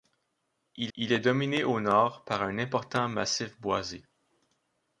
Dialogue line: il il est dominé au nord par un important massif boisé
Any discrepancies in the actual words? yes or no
no